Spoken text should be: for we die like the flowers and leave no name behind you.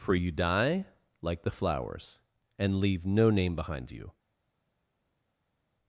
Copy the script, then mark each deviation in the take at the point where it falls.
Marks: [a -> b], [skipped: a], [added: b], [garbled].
for [we -> you] die like the flowers and leave no name behind you.